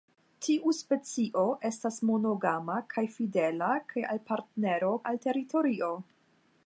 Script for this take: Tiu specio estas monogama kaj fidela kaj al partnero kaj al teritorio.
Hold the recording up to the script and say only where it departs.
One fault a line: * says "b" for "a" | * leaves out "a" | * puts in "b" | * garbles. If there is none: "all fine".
* leaves out "kaj"